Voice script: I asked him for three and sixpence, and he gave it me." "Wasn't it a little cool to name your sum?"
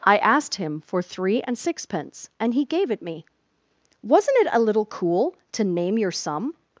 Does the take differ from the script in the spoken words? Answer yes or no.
no